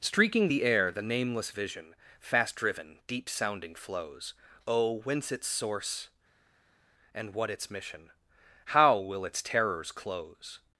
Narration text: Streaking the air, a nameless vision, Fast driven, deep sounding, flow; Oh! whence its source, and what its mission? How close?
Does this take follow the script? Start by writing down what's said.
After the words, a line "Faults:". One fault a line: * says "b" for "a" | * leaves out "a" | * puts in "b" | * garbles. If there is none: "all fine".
Streaking the air, the nameless vision, Fast driven, deep sounding, flows; Oh! whence its source, and what its mission? How will its terrors close?
Faults:
* says "the" for "a"
* says "flows" for "flow"
* puts in "will its terrors"